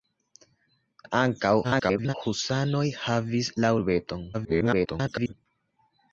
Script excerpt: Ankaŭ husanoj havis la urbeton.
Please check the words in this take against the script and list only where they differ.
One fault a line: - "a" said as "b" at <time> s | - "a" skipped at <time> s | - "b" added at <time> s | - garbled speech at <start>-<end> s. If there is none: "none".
- garbled speech at 1.6-2.1 s
- garbled speech at 4.3-5.3 s